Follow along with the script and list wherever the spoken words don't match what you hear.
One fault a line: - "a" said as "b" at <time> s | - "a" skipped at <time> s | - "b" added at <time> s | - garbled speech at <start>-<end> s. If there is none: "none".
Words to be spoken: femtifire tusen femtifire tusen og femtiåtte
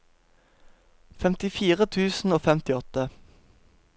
- "femtifire tusen" skipped at 2.3 s